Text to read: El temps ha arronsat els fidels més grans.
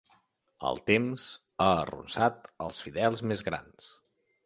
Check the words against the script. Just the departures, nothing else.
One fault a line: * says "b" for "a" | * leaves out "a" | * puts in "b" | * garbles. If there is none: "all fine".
all fine